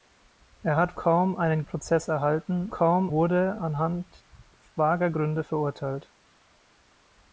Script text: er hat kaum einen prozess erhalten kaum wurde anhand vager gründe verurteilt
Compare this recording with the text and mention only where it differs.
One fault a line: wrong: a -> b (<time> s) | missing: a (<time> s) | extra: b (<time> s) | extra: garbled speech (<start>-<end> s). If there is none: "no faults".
no faults